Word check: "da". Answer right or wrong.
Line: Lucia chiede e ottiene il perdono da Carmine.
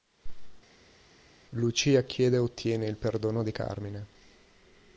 wrong